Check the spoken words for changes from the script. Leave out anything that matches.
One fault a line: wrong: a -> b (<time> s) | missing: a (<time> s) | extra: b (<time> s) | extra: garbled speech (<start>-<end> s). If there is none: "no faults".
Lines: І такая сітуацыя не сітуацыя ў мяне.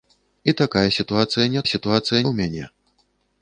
no faults